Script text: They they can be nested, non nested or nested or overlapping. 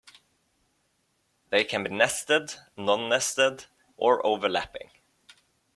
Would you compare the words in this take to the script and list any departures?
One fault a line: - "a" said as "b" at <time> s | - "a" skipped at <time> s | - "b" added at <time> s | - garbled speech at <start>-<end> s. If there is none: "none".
- "they" skipped at 1.6 s
- "nested or" skipped at 4.2 s